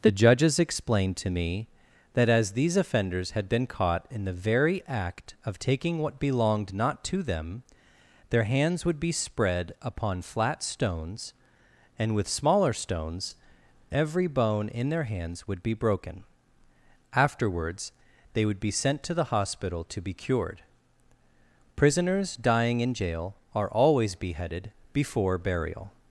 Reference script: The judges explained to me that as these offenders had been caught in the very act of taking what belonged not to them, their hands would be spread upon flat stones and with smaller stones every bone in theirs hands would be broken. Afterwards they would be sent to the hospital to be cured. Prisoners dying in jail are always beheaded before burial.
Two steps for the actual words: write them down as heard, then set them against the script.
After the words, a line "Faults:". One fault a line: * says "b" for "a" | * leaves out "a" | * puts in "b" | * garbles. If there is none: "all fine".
The judges explained to me that as these offenders had been caught in the very act of taking what belonged not to them, their hands would be spread upon flat stones and with smaller stones every bone in their hands would be broken. Afterwards they would be sent to the hospital to be cured. Prisoners dying in jail are always beheaded before burial.
Faults:
* says "their" for "theirs"